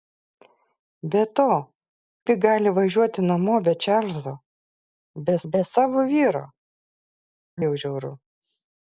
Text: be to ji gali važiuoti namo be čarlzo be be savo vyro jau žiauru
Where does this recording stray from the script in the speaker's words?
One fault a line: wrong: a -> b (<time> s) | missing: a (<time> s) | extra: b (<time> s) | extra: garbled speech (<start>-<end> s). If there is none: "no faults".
no faults